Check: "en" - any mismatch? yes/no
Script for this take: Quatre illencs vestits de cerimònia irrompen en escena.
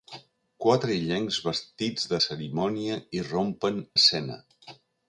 yes